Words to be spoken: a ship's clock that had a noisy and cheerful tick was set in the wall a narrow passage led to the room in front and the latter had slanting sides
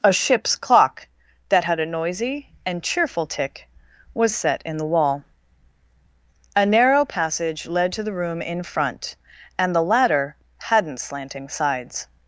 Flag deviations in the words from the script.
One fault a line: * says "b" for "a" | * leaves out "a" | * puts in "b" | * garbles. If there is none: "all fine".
* says "hadn't" for "had"